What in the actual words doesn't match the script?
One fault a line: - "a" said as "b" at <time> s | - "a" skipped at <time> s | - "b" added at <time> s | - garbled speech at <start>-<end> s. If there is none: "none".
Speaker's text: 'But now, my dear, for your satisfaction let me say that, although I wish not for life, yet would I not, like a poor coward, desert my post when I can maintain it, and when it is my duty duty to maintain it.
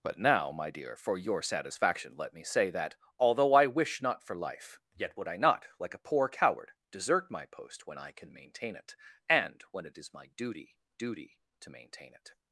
none